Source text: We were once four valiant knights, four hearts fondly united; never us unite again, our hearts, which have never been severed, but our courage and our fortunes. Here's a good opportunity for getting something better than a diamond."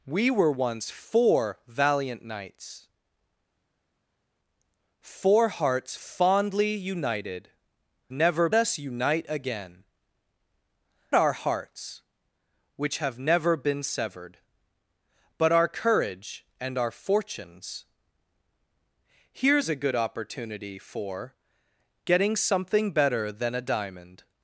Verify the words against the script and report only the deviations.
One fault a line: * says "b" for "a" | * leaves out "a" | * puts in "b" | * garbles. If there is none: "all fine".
all fine